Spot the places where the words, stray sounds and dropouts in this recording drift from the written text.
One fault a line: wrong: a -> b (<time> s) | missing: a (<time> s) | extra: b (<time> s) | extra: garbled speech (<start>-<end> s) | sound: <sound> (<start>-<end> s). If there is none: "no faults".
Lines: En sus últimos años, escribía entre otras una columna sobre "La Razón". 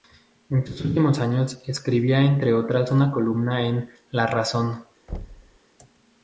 wrong: sobre -> en (3.7 s)
sound: thud (5.1-5.6 s)